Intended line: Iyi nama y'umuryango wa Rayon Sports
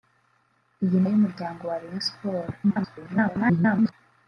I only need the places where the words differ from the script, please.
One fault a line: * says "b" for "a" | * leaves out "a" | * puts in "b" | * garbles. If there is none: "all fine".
* leaves out "nama"
* garbles